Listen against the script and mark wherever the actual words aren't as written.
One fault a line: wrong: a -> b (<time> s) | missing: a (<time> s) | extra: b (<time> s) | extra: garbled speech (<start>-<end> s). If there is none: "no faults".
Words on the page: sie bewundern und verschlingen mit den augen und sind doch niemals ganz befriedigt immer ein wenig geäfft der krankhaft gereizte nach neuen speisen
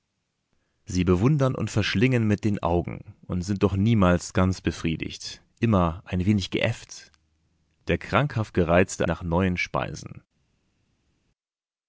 no faults